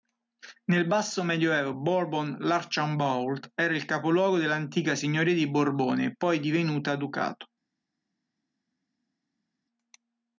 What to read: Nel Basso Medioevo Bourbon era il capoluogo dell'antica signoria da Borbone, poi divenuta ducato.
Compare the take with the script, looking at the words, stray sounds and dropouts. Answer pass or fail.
fail